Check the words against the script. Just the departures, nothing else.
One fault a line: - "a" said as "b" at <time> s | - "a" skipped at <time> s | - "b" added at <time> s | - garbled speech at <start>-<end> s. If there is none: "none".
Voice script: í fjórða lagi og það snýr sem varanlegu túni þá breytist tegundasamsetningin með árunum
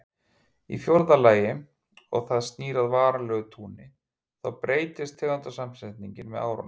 - "sem" said as "að" at 2.8 s